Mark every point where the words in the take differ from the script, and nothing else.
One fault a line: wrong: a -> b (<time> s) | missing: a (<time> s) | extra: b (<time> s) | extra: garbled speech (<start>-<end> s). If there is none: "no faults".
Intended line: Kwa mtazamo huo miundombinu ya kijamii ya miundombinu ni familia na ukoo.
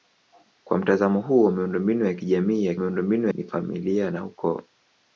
no faults